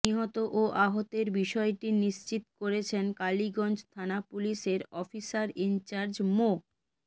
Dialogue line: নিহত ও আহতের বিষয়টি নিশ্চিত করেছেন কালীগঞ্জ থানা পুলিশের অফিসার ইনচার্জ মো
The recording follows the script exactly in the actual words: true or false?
true